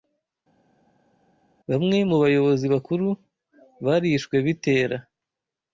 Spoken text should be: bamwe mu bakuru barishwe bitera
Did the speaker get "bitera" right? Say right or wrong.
right